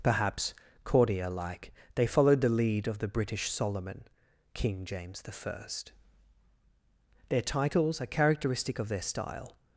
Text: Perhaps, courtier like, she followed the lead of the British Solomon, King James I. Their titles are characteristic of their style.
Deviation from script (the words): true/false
true